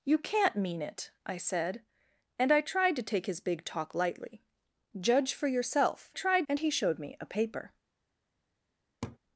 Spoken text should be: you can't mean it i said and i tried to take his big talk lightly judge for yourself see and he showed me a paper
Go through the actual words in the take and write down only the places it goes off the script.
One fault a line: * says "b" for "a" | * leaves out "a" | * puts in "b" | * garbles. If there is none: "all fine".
* says "tried" for "see"